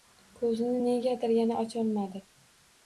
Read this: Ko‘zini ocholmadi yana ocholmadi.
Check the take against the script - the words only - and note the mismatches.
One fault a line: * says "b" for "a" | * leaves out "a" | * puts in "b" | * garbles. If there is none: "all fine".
* says "negadir" for "ocholmadi"